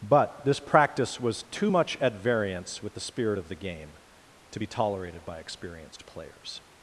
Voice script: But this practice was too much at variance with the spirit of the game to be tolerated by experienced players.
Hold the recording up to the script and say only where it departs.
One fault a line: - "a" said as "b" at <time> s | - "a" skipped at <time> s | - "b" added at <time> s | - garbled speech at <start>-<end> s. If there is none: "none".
none